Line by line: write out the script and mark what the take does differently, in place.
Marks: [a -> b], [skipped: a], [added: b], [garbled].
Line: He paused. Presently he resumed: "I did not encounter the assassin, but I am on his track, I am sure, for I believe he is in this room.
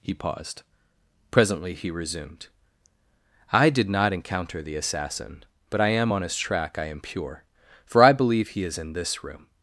He paused. Presently he resumed: "I did not encounter the assassin, but I am on his track, I am [sure, -> pure] for I believe he is in this room.